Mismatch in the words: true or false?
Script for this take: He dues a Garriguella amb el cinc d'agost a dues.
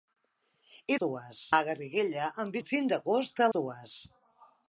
false